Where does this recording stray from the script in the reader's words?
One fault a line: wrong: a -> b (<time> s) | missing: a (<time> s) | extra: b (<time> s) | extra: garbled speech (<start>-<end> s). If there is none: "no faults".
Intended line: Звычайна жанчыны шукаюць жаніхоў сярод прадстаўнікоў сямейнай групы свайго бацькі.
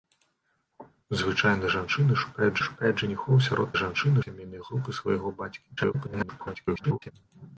extra: шукаюць (2.6 s)
wrong: прадстаўнікоў -> жанчыны (3.8 s)
extra: garbled speech (5.8-7.1 s)